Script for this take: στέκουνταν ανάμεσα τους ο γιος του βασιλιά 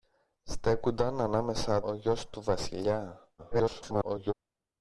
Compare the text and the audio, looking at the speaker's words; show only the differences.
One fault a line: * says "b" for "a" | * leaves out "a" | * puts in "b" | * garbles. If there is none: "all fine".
* leaves out "τους"
* garbles